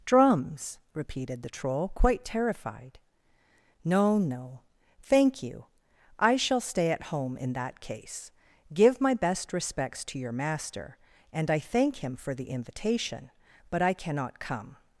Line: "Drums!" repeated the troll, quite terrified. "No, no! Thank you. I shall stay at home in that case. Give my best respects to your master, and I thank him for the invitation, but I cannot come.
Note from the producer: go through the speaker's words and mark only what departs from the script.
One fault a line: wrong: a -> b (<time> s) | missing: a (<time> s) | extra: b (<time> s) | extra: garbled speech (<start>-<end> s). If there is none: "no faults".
no faults